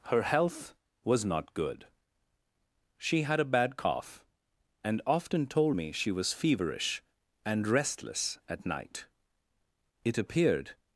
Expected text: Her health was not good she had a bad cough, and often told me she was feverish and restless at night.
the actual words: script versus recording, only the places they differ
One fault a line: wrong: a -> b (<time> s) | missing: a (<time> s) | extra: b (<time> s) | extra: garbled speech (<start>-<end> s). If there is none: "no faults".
extra: It appeared (10.0 s)